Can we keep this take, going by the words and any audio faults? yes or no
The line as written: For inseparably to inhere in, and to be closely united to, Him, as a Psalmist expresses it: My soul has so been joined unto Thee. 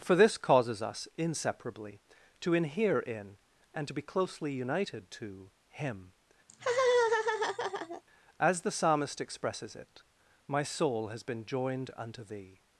no